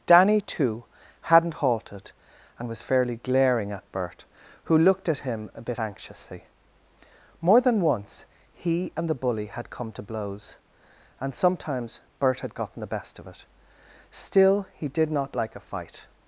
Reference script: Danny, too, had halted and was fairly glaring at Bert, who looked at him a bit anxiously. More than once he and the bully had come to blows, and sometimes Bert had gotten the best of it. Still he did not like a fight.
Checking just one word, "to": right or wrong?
right